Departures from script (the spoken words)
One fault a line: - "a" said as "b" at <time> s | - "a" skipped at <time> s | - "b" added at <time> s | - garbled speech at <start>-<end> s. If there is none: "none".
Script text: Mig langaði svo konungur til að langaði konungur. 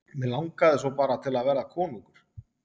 - "konungur" said as "bara" at 1.0 s
- "langaði" said as "verða" at 1.5 s